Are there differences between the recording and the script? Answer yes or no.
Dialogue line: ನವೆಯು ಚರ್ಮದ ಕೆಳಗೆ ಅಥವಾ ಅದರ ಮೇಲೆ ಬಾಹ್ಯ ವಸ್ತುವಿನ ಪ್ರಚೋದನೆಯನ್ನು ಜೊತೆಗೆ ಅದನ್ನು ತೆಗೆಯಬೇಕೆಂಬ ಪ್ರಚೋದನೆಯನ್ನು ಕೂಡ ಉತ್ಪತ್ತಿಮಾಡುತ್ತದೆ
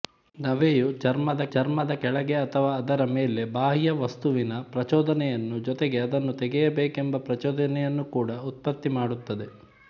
yes